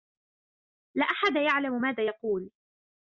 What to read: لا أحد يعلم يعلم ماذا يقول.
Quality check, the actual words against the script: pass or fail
fail